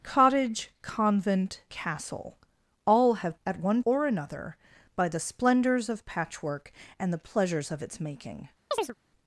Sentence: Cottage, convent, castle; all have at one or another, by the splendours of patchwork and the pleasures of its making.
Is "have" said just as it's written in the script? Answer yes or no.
yes